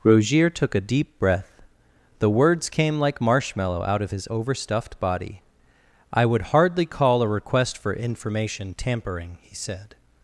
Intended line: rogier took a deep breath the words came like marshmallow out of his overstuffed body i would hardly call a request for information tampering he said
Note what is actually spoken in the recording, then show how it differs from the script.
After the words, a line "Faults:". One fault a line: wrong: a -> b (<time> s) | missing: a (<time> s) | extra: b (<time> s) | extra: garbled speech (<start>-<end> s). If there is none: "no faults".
rogier took a deep breath the words came like marshmallow out of his overstuffed body i would hardly call a request for information tampering he said
Faults:
no faults